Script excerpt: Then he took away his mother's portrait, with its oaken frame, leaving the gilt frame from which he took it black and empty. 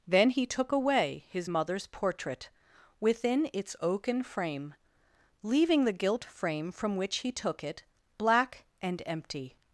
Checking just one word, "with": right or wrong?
wrong